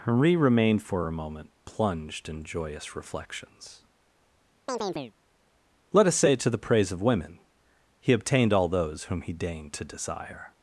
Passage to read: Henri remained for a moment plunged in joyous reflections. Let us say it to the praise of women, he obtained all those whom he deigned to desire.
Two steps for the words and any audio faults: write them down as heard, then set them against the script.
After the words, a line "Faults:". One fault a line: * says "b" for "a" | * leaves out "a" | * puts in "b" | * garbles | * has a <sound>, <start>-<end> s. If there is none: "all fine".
Henri remained for a moment plunged in joyous reflections. Let us say to the praise of women, he obtained all those whom he deigned to desire.
Faults:
* has a chirp, 4.7-5.1 s
* leaves out "it"